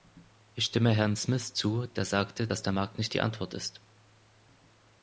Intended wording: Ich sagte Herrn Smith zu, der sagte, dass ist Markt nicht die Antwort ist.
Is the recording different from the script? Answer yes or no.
yes